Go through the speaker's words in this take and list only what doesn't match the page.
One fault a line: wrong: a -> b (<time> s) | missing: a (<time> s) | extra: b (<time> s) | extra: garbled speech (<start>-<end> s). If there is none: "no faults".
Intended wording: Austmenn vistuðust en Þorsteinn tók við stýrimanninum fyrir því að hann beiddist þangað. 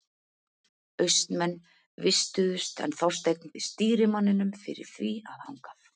missing: tók (3.5 s)
missing: hann beiddist (5.4 s)